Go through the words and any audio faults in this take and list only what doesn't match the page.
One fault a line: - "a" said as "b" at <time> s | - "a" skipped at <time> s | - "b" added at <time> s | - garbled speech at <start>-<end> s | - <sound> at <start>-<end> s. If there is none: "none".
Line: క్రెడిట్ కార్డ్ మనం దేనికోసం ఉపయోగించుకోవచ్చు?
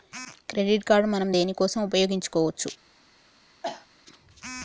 - cough at 3.6-3.9 s